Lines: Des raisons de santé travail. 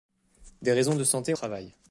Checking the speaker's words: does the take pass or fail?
pass